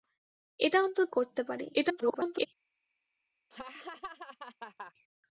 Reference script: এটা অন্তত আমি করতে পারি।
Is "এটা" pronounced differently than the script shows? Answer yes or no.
no